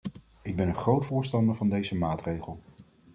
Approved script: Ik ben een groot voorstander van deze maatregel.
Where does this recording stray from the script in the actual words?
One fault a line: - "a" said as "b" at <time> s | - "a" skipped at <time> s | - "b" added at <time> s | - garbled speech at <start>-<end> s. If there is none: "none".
none